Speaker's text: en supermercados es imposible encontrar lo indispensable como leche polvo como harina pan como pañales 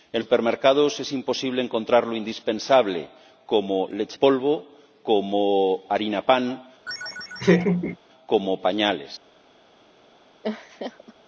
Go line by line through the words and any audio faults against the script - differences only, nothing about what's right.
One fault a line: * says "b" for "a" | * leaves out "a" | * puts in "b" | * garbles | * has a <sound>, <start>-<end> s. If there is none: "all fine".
* has a laugh, 6.9-8.0 s
* has a laugh, 10.4-11.1 s